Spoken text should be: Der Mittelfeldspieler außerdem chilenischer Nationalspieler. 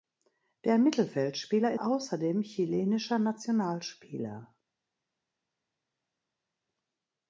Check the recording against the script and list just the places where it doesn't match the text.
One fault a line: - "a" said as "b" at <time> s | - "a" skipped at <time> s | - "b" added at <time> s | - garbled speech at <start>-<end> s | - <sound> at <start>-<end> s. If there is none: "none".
none